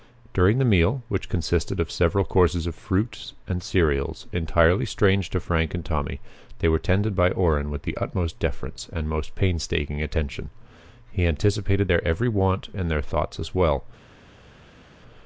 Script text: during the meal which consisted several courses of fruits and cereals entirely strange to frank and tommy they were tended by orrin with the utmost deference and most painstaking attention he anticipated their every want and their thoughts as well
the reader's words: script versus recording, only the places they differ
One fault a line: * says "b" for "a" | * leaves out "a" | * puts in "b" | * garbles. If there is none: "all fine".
* puts in "of"